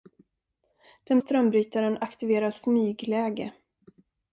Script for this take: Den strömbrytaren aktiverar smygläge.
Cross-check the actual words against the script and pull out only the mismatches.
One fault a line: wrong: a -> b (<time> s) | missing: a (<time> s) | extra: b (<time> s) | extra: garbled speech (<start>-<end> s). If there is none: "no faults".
no faults